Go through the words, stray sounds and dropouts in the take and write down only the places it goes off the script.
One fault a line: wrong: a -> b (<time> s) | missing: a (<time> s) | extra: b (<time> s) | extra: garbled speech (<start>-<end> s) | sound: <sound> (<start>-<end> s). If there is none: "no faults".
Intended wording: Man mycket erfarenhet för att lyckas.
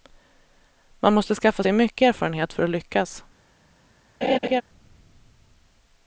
extra: måste skaffa sig (1.1 s)
sound: laugh (4.2-4.6 s)